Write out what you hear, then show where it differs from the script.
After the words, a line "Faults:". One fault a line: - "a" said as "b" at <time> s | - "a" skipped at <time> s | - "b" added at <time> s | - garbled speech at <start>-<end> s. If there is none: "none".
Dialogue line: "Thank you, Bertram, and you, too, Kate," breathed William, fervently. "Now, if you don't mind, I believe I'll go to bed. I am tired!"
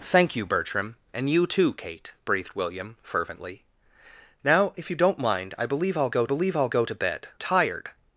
"Thank you, Bertram, and you, too, Kate," breathed William, fervently. "Now, if you don't mind, I believe I'll go believe I'll go to bed. tired!"
Faults:
- "believe I'll go" added at 6.2 s
- "I am" skipped at 7.3 s